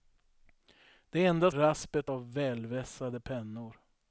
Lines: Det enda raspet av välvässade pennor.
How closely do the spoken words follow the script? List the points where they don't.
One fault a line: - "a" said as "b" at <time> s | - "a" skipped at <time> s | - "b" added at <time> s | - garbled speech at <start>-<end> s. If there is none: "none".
none